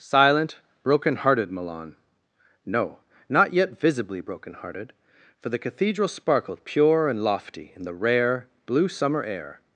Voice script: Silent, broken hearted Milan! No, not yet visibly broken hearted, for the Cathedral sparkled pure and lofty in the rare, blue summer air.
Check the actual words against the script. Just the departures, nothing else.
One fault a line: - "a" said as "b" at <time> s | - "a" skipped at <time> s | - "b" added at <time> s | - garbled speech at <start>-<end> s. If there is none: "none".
none